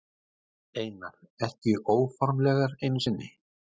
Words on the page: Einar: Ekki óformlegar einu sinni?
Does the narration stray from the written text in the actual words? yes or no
no